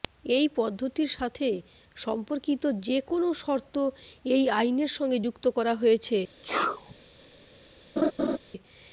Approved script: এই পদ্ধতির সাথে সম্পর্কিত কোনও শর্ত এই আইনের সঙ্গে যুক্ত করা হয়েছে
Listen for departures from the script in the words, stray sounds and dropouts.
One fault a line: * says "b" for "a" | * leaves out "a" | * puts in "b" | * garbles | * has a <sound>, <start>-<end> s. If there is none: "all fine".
* puts in "যে"
* has a sneeze, 6.4-6.9 s
* has a laugh, 8.0-8.4 s